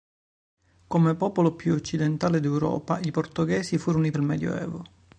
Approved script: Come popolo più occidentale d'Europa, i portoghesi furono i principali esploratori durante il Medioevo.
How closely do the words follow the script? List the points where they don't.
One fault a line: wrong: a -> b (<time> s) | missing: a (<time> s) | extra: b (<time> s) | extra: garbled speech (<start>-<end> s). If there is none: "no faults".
missing: principali esploratori durante (4.1 s)